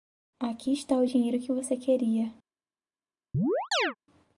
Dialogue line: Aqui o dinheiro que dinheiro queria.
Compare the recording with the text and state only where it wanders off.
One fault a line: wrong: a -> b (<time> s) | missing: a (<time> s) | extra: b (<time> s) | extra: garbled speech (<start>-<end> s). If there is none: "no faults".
extra: está (0.7 s)
wrong: dinheiro -> você (1.5 s)